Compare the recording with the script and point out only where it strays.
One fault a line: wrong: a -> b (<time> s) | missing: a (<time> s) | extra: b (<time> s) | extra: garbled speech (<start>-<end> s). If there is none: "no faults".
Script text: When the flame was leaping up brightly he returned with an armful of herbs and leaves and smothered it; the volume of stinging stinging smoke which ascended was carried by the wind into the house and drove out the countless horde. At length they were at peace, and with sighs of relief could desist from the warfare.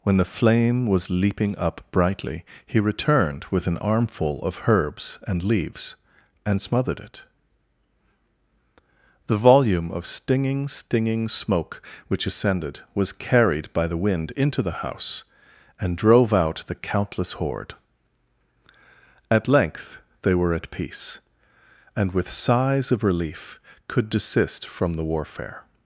no faults